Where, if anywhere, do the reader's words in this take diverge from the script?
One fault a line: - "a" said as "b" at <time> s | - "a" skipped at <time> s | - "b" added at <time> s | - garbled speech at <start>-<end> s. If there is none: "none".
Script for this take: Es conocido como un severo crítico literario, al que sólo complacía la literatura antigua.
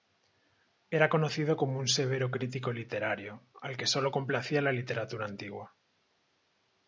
- "Es" said as "Era" at 0.9 s